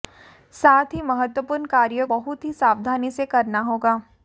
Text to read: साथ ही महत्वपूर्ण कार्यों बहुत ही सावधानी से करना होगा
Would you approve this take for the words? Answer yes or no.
yes